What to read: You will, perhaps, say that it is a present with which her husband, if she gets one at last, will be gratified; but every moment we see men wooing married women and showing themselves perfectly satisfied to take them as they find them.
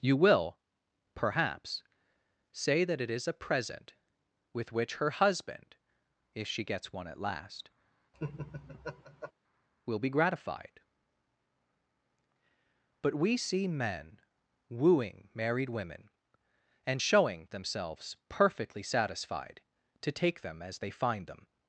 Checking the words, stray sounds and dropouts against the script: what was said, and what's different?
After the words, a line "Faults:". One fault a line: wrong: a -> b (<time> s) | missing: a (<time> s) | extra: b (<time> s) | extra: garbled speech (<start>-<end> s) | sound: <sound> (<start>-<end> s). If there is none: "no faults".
You will, perhaps, say that it is a present with which her husband, if she gets one at last, will be gratified; but we see men wooing married women and showing themselves perfectly satisfied to take them as they find them.
Faults:
sound: laugh (8.1-9.3 s)
missing: every moment (13.1 s)